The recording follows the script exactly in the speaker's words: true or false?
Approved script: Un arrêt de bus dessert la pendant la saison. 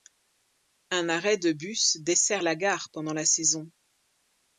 false